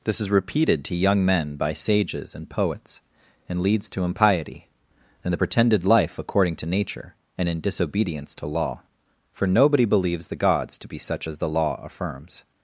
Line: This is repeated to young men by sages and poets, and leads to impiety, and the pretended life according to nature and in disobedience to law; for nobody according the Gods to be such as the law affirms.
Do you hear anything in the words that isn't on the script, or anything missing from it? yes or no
yes